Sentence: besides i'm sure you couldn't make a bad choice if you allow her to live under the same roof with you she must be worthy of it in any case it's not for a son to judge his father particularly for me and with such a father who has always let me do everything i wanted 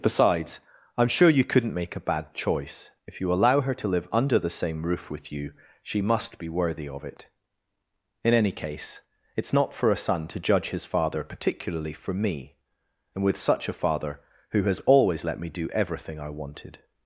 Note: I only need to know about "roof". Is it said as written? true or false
true